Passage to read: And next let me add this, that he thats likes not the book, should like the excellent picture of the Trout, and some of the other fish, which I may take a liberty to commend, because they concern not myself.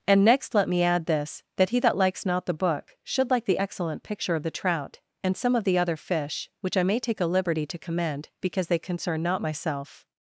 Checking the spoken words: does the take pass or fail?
fail